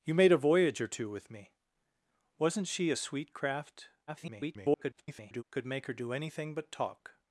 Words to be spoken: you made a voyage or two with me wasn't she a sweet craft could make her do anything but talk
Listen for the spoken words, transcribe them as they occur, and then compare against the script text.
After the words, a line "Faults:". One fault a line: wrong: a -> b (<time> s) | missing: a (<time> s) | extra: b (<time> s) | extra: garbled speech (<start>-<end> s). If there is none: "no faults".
you made a voyage or two with me wasn't she a sweet craft [garbled] could make her do anything but talk
Faults:
extra: garbled speech (4.1-5.4 s)